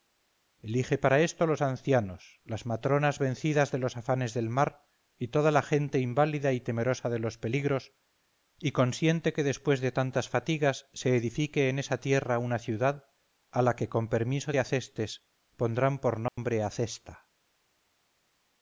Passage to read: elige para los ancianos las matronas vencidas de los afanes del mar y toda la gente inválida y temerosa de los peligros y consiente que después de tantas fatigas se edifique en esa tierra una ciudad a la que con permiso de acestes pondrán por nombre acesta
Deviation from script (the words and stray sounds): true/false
true